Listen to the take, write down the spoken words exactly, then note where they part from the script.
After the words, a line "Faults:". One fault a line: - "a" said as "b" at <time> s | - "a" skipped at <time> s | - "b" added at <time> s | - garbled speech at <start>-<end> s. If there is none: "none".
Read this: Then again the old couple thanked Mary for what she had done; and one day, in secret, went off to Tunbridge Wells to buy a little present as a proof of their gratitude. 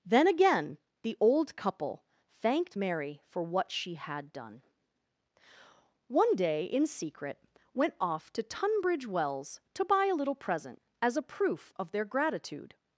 Then again the old couple thanked Mary for what she had done; one day, in secret, went off to Tunbridge Wells to buy a little present as a proof of their gratitude.
Faults:
- "and" skipped at 4.6 s